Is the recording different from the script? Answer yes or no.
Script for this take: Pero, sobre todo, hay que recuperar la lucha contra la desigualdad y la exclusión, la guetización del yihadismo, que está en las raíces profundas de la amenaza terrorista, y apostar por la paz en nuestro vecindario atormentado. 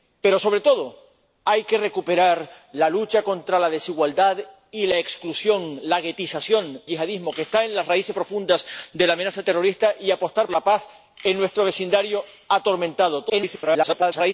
yes